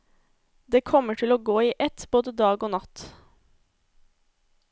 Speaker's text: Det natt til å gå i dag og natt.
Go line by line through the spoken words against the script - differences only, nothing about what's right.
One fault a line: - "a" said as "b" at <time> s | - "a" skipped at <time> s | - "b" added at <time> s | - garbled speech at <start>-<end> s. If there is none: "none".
- "natt" said as "kommer" at 0.9 s
- "ett både" added at 1.9 s